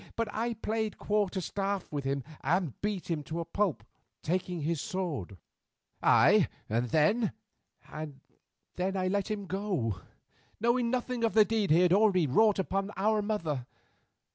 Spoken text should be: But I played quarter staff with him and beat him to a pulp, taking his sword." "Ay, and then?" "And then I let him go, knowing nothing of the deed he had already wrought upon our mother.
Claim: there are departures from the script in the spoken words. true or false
false